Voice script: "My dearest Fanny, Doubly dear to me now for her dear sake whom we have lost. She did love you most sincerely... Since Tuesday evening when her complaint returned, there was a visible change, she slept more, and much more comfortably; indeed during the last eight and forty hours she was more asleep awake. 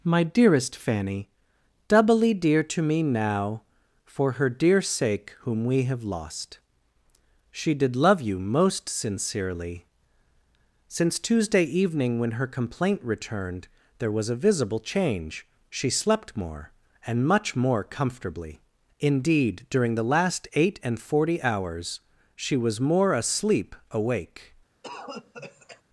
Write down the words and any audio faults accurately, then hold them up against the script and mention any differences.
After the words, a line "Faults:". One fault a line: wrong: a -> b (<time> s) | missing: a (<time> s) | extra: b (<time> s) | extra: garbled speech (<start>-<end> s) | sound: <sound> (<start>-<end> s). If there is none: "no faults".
"My dearest Fanny, Doubly dear to me now for her dear sake whom we have lost. She did love you most sincerely... Since Tuesday evening when her complaint returned, there was a visible change, she slept more, and much more comfortably; indeed during the last eight and forty hours she was more asleep awake.
Faults:
sound: cough (24.8-25.8 s)